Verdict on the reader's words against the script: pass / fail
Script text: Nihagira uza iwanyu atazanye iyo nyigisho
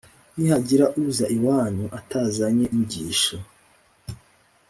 fail